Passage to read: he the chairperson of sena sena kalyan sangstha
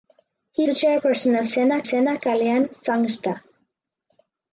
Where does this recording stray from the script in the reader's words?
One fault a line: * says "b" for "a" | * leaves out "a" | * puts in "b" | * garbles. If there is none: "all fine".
all fine